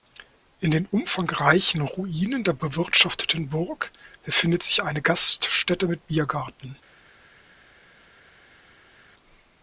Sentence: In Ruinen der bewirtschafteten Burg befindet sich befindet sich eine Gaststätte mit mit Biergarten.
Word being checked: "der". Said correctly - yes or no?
yes